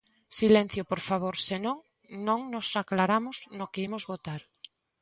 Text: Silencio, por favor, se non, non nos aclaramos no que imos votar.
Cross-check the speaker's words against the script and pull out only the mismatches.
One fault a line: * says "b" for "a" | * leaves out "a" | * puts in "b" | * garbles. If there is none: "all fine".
all fine